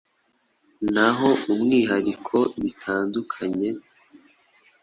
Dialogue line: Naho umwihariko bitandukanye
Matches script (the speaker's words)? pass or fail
pass